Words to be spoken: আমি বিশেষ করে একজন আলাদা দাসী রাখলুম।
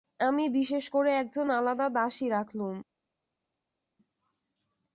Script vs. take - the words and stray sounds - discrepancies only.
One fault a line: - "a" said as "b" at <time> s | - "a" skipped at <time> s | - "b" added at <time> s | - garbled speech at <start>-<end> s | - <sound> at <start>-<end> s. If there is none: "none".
none